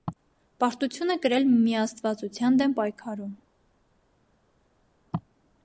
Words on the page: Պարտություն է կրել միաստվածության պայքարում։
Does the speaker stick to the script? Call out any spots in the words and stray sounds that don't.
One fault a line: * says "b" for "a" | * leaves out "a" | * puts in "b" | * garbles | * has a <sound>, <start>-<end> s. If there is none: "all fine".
* puts in "դեմ"